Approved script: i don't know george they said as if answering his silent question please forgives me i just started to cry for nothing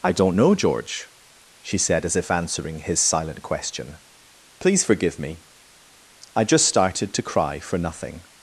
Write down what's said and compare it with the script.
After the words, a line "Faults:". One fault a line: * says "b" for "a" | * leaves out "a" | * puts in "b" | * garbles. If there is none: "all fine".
i don't know george she said as if answering his silent question please forgive me i just started to cry for nothing
Faults:
* says "she" for "they"
* says "forgive" for "forgives"